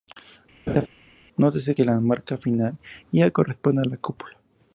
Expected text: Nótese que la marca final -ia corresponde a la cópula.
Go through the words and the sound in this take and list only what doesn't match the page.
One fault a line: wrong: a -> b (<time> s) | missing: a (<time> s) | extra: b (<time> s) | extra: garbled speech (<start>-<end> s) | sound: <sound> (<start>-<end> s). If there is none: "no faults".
sound: laugh (0.7-0.9 s)